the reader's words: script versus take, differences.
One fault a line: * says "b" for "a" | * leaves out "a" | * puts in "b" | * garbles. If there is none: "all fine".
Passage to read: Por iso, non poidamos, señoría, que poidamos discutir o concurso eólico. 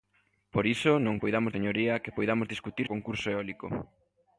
all fine